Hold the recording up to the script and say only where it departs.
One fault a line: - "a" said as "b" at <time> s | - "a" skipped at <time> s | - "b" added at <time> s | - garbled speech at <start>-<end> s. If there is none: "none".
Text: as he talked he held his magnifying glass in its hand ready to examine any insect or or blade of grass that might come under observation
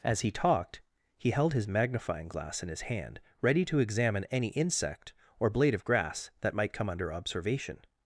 - "its" said as "his" at 2.7 s
- "or" skipped at 5.5 s